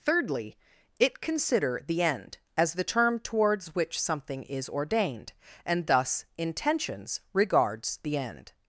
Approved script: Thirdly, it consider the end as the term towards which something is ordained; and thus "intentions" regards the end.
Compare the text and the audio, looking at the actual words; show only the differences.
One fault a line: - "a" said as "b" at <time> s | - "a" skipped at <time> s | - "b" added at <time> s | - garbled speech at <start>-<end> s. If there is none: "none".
none